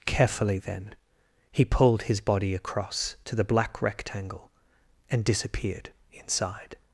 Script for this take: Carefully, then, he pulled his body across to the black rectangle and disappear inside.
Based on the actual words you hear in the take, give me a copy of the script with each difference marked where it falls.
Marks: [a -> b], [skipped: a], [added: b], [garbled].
Carefully, then, he pulled his body across to the black rectangle and [disappear -> disappeared] inside.